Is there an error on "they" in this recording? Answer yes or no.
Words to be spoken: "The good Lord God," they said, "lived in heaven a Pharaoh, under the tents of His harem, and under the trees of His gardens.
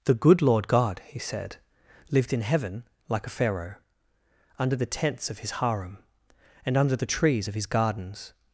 yes